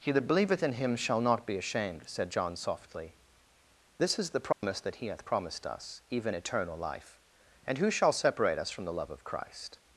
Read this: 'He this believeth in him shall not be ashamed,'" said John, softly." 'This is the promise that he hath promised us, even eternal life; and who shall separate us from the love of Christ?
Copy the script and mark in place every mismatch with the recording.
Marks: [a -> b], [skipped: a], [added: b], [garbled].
'He [this -> that] believeth in him shall not be ashamed,'" said John, softly." 'This is the promise that he hath promised us, even eternal life; and who shall separate us from the love of Christ?